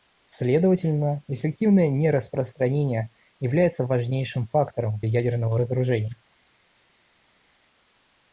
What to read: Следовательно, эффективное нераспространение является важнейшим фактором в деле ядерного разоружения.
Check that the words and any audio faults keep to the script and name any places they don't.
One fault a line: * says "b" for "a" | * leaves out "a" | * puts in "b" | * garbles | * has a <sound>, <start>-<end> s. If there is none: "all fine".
* leaves out "деле"